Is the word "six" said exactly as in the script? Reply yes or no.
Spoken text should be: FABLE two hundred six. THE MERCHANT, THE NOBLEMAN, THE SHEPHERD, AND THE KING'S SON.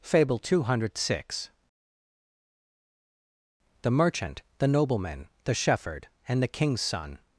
yes